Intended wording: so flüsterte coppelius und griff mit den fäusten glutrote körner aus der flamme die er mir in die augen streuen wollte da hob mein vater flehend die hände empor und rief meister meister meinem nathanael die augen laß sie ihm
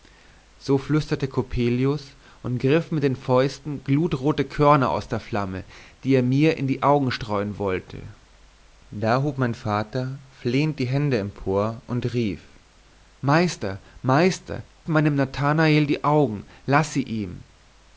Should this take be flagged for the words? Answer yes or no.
no